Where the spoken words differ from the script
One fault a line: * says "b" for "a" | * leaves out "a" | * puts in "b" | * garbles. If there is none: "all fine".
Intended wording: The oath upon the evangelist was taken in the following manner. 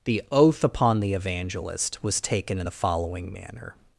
all fine